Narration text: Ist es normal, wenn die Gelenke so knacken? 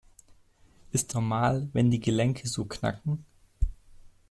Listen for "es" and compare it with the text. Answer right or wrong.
wrong